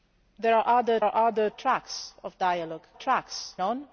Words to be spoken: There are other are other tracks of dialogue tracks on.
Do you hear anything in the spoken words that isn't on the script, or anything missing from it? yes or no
no